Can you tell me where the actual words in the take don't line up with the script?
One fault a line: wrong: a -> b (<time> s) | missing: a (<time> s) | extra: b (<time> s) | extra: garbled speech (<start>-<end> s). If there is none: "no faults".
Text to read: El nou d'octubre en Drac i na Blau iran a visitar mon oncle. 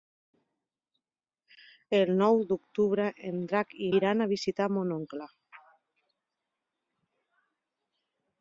missing: na Blau (3.9 s)